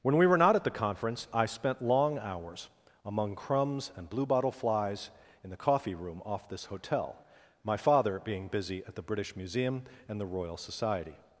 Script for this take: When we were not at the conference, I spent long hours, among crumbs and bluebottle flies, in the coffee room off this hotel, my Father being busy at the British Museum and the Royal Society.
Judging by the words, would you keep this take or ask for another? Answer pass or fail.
pass